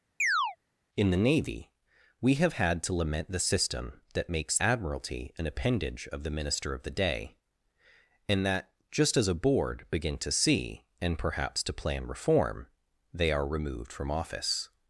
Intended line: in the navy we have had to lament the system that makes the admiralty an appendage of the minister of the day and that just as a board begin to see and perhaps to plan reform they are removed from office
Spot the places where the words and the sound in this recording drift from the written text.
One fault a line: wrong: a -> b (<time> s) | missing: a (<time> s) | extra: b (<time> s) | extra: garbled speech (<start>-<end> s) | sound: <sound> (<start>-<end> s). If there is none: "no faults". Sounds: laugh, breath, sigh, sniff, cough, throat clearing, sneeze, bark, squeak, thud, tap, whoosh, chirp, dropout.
sound: chirp (0.2-0.6 s)
missing: the (4.6 s)